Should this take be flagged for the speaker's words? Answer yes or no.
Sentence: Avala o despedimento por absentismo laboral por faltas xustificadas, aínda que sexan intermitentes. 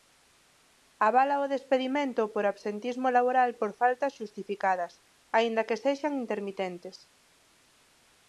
no